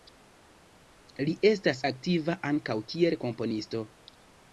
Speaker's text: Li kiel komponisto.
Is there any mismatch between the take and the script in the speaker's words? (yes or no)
yes